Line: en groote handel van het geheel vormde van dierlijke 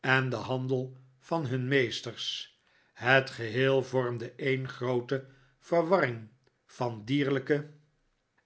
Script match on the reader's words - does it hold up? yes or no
no